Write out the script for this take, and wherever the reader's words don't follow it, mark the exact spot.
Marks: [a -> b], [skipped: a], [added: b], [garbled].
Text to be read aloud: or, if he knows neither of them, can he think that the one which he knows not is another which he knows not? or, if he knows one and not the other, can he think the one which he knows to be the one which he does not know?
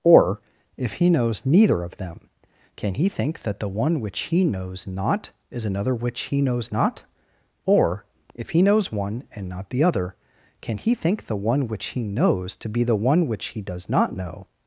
or, if he knows neither of them, can he think that the one which he knows not is another which he knows not? or, if he knows one and not the other, can he think the one which he knows to be the one which he does not know?